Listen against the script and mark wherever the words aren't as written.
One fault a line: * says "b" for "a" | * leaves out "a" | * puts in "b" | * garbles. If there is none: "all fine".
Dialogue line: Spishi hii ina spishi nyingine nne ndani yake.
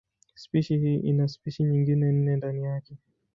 all fine